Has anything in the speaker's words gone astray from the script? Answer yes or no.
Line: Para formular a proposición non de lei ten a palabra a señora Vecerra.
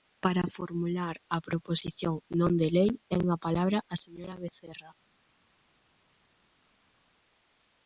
no